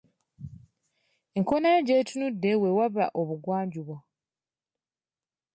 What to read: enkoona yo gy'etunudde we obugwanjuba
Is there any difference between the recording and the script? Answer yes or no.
yes